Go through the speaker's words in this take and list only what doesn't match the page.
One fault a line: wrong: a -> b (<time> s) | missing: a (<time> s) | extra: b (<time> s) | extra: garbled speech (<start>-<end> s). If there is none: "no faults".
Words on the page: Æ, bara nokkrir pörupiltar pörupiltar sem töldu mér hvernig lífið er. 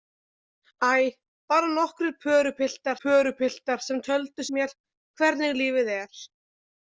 no faults